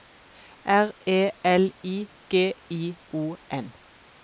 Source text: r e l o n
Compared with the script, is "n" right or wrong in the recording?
right